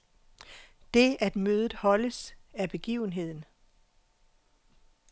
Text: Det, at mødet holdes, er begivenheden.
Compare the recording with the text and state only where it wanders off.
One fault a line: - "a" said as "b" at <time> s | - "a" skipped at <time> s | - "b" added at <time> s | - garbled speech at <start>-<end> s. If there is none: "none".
none